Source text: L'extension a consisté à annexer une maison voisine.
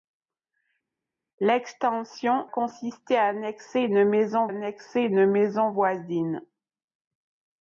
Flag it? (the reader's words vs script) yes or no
yes